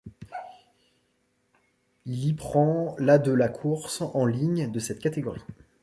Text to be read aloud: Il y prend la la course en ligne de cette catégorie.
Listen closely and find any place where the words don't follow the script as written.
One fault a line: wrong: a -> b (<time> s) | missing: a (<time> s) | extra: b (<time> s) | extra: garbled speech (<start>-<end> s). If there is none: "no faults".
extra: de (3.2 s)